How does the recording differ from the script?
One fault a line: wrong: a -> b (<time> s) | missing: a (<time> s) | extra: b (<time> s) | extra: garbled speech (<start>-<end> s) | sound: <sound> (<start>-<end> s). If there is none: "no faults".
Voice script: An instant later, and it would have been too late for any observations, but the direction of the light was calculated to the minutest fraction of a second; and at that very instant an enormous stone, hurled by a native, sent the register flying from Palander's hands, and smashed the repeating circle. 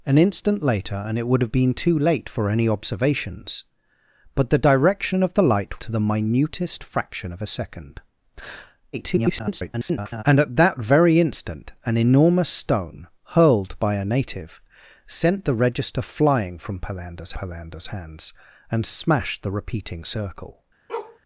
missing: was calculated (5.8 s)
extra: garbled speech (8.9-10.2 s)
extra: Palander's (17.3 s)
sound: bark (20.9-21.2 s)